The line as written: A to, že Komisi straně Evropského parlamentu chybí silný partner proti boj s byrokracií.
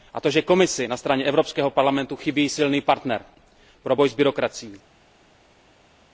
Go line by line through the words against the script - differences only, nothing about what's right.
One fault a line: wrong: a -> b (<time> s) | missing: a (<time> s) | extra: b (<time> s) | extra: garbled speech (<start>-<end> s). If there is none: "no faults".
extra: na (0.9 s)
wrong: proti -> pro (3.8 s)